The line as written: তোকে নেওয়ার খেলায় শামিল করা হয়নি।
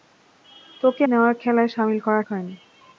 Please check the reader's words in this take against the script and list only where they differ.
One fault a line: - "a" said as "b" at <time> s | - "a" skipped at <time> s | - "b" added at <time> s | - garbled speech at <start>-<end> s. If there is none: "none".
none